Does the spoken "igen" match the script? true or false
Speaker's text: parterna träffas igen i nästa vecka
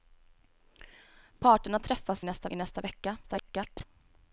false